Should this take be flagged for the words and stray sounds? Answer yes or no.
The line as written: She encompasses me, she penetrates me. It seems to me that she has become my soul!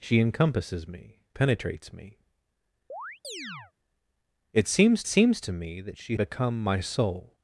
yes